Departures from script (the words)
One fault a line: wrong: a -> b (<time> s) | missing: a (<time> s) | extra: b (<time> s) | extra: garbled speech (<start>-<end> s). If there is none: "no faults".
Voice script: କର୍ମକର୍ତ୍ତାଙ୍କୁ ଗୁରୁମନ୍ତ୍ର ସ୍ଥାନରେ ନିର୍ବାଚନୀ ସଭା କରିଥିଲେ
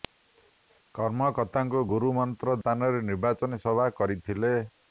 no faults